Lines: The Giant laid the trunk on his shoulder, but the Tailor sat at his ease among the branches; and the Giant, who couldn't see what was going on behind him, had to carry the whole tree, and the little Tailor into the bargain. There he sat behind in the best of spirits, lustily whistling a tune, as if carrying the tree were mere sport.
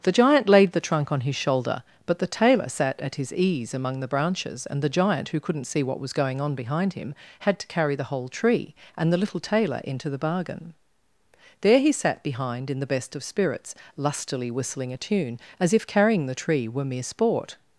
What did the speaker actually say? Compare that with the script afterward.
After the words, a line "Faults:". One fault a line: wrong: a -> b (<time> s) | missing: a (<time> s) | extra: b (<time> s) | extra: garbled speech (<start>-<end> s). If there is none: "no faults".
The Giant laid the trunk on his shoulder, but the Tailor sat at his ease among the branches; and the Giant, who couldn't see what was going on behind him, had to carry the whole tree, and the little Tailor into the bargain. There he sat behind in the best of spirits, lustily whistling a tune, as if carrying the tree were mere sport.
Faults:
no faults